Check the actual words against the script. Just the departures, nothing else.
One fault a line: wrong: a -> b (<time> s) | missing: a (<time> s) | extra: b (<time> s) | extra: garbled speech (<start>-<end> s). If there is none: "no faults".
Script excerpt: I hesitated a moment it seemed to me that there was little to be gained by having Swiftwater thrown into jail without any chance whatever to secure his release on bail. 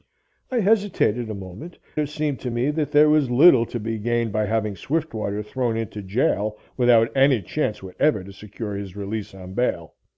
no faults